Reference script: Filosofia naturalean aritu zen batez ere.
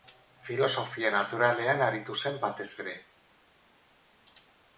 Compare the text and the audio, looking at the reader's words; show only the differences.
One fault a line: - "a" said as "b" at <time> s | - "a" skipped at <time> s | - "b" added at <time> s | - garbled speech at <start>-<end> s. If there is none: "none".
none